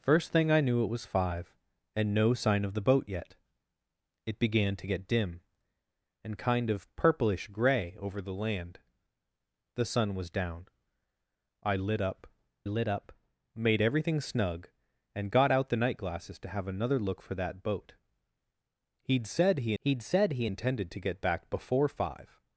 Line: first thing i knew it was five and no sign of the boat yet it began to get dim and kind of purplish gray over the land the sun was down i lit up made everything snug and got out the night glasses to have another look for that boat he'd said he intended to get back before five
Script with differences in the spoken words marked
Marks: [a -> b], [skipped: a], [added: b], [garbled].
first thing i knew it was five and no sign of the boat yet it began to get dim and kind of purplish gray over the land the sun was down i lit up [added: lit up] made everything snug and got out the night glasses to have another look for that boat he'd said he [added: he'd said he] intended to get back before five